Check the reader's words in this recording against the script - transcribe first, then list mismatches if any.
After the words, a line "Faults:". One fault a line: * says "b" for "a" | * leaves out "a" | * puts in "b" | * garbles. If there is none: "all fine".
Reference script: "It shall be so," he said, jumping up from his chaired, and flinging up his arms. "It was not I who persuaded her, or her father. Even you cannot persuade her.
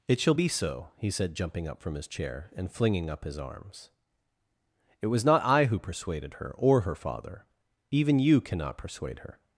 "It shall be so," he said, jumping up from his chair, and flinging up his arms. "It was not I who persuaded her, or her father. Even you cannot persuade her.
Faults:
* says "chair" for "chaired"